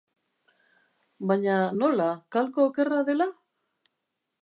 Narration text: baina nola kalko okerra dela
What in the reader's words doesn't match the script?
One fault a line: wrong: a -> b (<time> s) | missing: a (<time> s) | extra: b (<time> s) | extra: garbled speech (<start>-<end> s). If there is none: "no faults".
no faults